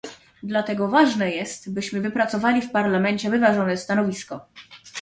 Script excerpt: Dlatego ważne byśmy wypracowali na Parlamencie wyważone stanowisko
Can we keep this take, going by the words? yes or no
no